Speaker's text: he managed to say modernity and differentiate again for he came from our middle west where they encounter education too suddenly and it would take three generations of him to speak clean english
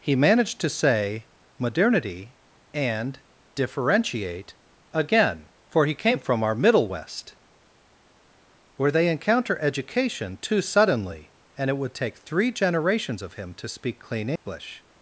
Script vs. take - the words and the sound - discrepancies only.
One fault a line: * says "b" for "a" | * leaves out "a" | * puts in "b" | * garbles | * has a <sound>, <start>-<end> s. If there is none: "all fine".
* has a dropout, 14.4-14.5 s